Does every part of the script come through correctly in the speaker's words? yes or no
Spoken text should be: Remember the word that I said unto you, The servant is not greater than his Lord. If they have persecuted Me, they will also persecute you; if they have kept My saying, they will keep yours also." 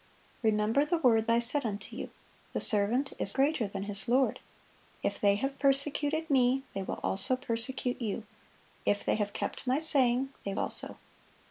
no